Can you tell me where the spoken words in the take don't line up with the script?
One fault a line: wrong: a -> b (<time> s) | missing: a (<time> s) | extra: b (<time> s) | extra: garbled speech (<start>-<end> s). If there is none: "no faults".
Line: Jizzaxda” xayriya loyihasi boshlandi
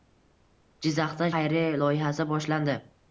no faults